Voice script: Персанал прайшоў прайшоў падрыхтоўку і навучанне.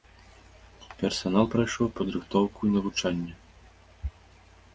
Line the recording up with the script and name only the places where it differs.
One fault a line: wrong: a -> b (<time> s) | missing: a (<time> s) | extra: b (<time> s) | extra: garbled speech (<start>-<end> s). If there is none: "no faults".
missing: прайшоў (1.9 s)